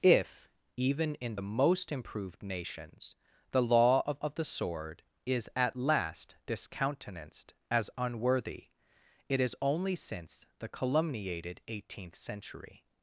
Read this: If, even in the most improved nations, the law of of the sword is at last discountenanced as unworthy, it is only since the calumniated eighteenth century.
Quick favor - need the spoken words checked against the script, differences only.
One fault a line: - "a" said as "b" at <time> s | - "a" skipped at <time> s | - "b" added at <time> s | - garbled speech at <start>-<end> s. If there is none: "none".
none